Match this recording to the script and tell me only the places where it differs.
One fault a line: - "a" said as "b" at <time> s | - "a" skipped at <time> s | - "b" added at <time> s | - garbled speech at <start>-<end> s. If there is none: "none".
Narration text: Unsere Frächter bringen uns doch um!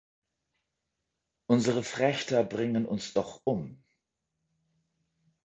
none